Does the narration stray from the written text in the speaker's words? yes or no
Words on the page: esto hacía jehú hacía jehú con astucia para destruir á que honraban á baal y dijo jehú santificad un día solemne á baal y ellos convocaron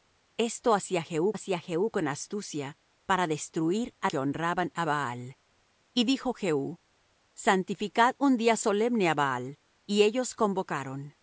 no